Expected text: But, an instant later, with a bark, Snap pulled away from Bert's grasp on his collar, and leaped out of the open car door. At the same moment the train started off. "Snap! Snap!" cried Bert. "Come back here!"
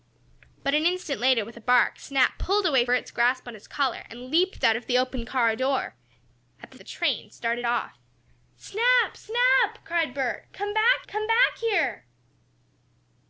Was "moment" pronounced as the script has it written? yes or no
no